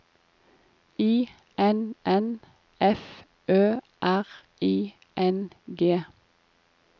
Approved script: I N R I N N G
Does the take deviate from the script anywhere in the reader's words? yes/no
yes